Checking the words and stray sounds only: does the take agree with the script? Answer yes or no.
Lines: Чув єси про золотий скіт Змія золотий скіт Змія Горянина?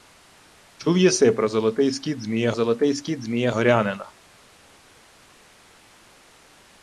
yes